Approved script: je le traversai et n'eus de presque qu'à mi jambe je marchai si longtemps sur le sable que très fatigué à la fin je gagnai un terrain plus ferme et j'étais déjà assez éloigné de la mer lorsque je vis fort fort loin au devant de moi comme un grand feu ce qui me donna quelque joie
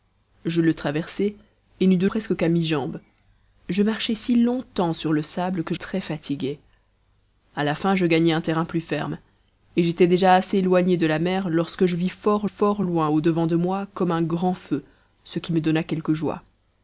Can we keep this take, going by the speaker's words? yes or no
yes